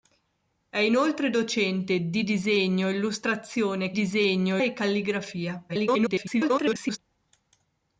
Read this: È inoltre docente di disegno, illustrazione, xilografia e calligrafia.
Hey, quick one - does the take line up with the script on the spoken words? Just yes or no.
no